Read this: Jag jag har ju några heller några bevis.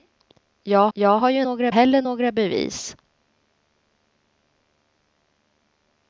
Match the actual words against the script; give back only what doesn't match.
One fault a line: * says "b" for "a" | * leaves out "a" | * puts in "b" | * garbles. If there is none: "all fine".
all fine